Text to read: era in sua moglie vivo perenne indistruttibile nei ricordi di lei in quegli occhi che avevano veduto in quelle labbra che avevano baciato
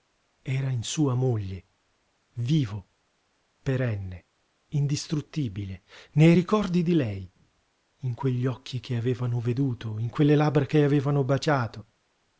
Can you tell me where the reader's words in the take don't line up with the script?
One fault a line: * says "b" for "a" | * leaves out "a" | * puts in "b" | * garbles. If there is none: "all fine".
all fine